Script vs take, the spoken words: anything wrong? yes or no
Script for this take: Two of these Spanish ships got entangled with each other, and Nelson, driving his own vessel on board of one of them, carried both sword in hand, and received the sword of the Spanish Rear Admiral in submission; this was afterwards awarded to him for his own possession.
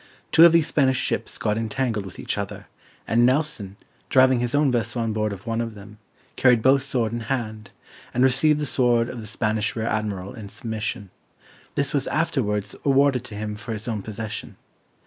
no